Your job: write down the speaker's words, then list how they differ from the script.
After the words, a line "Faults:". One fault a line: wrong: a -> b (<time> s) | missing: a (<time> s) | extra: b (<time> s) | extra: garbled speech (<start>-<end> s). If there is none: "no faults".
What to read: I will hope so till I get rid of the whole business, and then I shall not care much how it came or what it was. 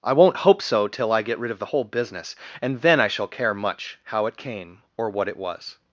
I won't hope so till I get rid of the whole business, and then I shall care much how it came or what it was.
Faults:
wrong: will -> won't (0.1 s)
missing: not (3.3 s)